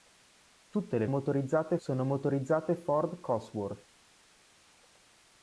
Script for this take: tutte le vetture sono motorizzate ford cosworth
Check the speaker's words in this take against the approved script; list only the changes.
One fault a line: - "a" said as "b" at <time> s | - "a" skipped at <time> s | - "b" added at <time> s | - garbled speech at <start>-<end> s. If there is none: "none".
- "vetture" said as "motorizzate" at 1.1 s